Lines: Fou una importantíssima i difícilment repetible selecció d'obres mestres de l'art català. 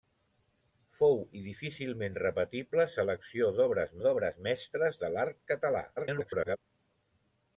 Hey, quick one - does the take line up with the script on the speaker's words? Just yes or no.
no